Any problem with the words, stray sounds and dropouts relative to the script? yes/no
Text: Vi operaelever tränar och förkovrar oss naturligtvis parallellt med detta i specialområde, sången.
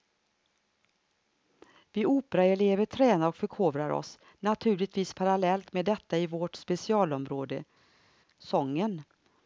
yes